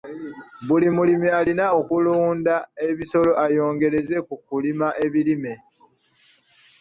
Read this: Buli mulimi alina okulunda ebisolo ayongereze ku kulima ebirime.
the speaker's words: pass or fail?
pass